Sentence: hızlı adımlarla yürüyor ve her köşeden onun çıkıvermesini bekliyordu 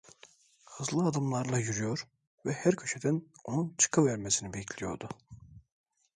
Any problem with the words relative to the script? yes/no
no